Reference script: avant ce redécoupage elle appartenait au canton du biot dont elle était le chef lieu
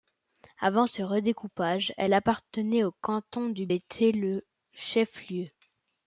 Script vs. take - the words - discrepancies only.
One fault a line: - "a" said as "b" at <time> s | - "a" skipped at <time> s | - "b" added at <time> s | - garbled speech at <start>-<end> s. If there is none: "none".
- "biot dont elle" skipped at 3.7 s